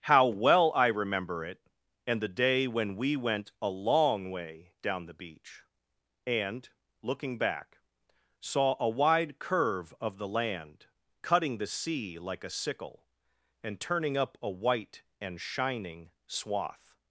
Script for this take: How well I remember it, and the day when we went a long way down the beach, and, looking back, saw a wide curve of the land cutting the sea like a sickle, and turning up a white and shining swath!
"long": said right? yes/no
yes